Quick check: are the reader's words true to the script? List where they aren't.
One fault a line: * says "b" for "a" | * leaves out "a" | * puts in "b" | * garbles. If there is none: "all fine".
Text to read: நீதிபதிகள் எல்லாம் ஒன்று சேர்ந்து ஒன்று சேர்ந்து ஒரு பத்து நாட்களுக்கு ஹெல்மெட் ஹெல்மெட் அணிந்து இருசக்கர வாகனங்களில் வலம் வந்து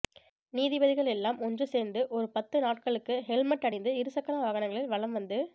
* leaves out "ஒன்று சேர்ந்து"
* leaves out "ஹெல்மெட்"